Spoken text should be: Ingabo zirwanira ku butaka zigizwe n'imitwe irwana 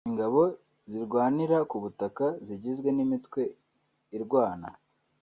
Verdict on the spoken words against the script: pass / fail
pass